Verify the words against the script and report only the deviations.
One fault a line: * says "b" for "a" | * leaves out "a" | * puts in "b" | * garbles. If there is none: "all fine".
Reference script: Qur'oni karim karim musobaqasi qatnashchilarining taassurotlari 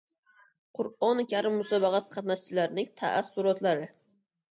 * leaves out "karim"